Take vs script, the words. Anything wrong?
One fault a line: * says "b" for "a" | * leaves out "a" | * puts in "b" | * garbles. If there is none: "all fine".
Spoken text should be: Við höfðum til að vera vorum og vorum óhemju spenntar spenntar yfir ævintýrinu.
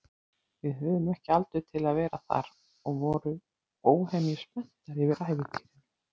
* puts in "ekki aldur"
* says "þar" for "vorum"
* leaves out "spenntar"